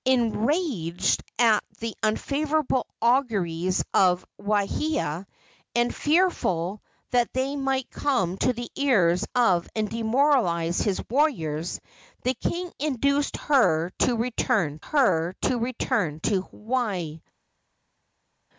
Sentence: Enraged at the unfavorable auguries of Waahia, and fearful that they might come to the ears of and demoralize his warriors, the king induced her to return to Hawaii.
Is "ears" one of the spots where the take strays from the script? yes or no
no